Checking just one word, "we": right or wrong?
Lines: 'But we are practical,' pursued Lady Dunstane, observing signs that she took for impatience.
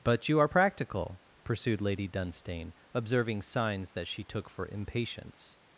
wrong